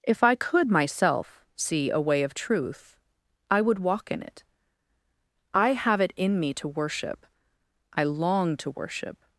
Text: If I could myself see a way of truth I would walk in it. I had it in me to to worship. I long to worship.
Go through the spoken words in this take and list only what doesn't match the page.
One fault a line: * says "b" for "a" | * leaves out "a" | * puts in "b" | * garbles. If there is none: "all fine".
* says "have" for "had"
* leaves out "to"